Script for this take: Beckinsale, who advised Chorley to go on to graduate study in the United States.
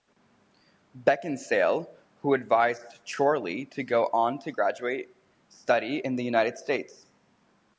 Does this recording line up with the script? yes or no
yes